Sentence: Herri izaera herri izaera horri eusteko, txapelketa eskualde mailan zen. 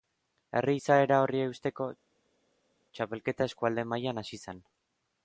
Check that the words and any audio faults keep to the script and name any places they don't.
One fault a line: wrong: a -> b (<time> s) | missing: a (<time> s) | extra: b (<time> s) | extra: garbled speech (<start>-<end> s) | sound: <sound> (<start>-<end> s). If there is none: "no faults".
missing: herri izaera (1.2 s)
extra: hasi (4.3 s)